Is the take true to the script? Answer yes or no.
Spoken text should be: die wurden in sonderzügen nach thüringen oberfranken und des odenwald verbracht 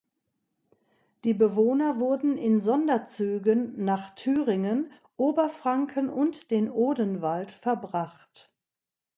no